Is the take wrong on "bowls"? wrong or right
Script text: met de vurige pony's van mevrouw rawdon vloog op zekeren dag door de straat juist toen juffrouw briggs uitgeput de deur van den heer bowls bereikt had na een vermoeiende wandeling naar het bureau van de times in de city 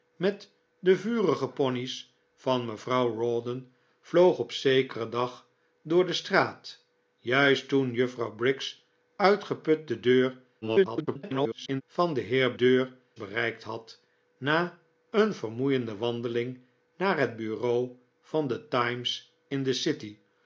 wrong